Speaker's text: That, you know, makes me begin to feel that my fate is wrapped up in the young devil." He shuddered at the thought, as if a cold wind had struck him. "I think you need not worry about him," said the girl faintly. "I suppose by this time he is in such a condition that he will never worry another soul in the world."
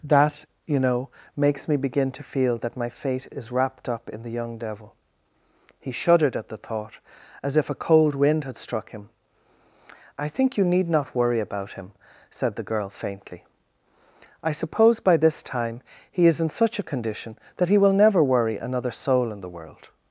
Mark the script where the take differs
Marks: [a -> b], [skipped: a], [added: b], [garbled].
That, you know, makes me begin to feel that my fate is wrapped up in the young devil." He shuddered at the thought, as if a cold wind had struck him. "I think you need not worry about him," said the girl faintly. "I suppose by this time he is in such a condition that he will never worry another soul in the world."